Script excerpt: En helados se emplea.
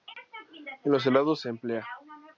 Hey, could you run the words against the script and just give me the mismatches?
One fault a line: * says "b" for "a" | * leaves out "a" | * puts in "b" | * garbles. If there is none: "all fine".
* puts in "los"